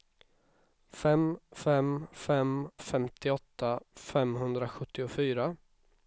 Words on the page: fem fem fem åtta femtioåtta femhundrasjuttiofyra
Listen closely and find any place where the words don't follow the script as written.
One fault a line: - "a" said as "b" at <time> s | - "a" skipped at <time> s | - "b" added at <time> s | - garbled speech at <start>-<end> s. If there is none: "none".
- "åtta" skipped at 2.7 s